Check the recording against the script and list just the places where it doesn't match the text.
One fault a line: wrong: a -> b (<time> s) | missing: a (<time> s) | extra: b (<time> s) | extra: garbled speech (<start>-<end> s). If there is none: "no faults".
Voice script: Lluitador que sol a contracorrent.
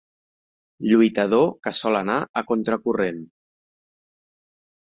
extra: anar (2.0 s)